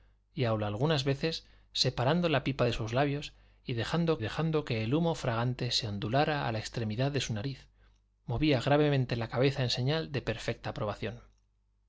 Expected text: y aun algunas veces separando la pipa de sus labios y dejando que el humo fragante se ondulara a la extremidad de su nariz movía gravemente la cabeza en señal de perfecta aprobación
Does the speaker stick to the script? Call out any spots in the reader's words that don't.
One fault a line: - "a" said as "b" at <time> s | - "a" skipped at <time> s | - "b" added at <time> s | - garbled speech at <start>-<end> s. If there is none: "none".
- "dejando" added at 4.2 s